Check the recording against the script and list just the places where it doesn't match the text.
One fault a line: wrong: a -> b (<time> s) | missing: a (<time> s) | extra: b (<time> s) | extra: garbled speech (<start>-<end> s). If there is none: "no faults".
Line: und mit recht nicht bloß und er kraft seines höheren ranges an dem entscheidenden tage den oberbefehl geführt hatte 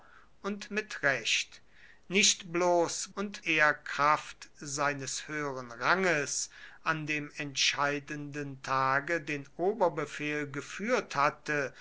no faults